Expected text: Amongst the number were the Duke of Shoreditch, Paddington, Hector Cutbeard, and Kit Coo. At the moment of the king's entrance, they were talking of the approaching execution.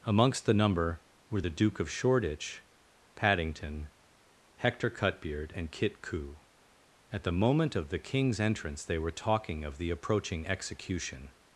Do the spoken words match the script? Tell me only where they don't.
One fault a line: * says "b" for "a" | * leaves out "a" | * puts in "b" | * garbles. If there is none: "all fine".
all fine